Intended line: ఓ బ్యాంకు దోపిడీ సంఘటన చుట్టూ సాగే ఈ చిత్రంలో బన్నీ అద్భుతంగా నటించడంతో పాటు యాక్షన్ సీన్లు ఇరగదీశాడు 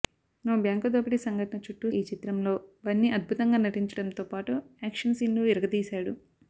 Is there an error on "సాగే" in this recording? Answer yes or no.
yes